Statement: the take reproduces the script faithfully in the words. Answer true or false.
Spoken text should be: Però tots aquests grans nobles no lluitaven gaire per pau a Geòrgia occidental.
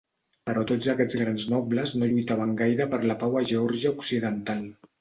false